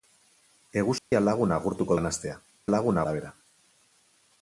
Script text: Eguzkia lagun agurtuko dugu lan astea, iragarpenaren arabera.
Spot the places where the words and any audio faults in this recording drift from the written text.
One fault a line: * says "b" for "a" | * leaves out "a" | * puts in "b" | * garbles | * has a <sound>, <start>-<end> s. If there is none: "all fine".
* has a dropout, 1.0-1.1 s
* leaves out "dugu"
* says "lagun" for "iragarpenaren"